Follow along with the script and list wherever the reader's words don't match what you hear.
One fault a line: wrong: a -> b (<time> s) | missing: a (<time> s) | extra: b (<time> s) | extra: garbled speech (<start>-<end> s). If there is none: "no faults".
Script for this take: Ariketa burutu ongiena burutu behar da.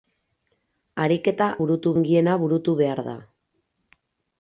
no faults